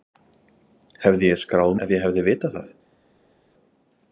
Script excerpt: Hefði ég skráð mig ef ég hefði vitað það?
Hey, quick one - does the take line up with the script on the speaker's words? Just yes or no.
no